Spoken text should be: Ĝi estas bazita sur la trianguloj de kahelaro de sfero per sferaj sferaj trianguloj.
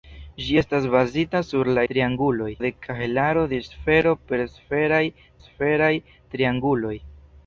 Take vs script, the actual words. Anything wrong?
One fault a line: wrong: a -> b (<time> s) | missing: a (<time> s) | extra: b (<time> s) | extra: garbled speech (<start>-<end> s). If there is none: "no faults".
no faults